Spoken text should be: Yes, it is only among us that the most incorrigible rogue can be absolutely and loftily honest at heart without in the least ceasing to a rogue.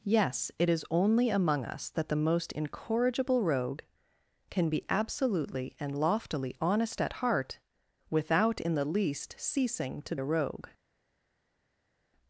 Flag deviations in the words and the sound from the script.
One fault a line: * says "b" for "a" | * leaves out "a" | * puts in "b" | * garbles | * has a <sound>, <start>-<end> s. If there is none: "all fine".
all fine